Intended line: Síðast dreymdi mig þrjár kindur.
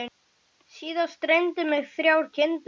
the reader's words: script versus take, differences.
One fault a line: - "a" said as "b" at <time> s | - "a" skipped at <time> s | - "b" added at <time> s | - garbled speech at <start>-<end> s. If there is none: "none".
none